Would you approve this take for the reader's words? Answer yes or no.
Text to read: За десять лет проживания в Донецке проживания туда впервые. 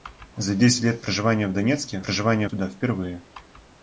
yes